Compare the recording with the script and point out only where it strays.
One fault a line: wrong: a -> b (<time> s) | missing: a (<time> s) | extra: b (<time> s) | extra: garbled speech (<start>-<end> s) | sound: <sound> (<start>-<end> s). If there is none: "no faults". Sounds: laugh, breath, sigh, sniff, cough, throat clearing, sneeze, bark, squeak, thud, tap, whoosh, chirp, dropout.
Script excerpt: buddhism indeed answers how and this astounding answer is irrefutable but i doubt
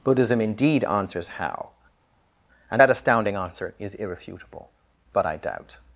wrong: this -> that (2.8 s)